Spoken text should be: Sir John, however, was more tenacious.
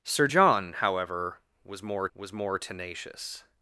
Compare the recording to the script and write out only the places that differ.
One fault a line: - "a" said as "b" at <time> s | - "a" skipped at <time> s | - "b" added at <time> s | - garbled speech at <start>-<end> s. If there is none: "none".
- "was more" added at 2.1 s